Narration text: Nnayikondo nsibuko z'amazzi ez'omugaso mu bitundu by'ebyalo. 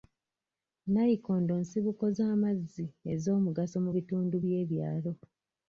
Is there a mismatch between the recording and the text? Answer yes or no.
no